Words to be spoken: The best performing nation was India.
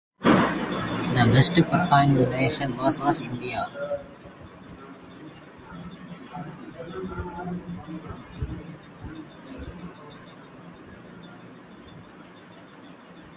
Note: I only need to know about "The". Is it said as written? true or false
true